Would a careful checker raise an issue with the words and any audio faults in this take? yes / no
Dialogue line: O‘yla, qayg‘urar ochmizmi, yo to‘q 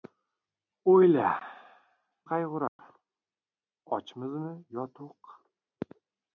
yes